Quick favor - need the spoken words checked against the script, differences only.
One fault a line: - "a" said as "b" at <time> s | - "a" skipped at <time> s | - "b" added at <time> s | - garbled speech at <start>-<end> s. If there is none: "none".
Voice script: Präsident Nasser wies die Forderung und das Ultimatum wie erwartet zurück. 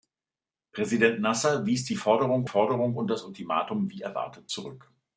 - "Forderung" added at 2.4 s